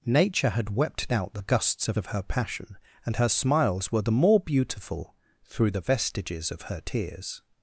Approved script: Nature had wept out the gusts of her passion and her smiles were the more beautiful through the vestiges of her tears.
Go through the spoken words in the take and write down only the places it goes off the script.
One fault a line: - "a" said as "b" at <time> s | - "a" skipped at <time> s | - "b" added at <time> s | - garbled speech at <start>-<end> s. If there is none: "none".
- "of" added at 2.0 s